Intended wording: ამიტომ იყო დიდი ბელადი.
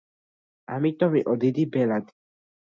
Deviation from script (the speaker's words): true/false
false